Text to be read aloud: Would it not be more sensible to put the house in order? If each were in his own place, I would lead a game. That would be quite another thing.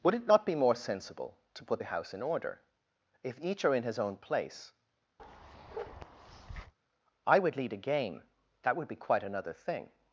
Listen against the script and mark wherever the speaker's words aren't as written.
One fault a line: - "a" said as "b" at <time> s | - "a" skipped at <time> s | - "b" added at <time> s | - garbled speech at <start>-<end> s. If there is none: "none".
- "were" said as "are" at 3.6 s